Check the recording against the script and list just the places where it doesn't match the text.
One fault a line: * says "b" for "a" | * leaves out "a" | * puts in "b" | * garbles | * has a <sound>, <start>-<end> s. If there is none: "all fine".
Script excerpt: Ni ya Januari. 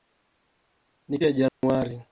* has a dropout, 1.5-1.6 s